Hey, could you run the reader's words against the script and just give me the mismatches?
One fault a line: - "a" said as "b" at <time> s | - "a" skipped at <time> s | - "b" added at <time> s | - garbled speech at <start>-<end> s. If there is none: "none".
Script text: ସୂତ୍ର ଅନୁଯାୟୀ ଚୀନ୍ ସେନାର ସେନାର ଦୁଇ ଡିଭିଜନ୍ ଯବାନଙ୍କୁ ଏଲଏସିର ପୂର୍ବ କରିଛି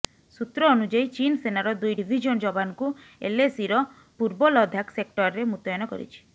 - "ସେନାର" skipped at 1.7 s
- "ଲଦାଖ ସେକ୍ଟରରେ ମୁତୟନ" added at 4.5 s